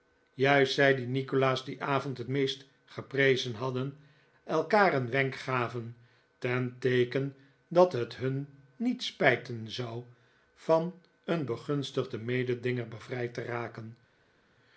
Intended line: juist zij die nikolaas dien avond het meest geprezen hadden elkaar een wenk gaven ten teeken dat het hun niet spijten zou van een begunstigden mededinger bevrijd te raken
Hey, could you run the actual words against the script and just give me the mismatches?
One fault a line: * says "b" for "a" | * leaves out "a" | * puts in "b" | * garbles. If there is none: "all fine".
all fine